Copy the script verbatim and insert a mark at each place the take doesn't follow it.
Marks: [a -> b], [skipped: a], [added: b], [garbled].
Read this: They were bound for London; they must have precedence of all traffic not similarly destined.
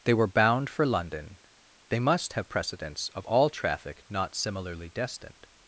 They were bound for London; they must have precedence of all traffic not similarly destined.